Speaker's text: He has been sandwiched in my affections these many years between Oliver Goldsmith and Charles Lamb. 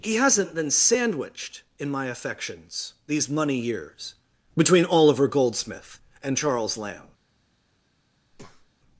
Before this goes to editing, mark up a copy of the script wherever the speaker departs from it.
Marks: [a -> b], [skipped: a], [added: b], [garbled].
He [has -> hasn't] been sandwiched in my affections these [many -> money] years between Oliver Goldsmith and Charles Lamb.